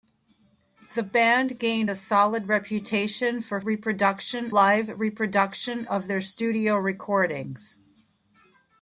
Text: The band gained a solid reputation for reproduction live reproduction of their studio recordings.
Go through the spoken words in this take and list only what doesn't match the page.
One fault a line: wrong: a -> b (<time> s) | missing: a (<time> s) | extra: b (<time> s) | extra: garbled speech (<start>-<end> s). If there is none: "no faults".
no faults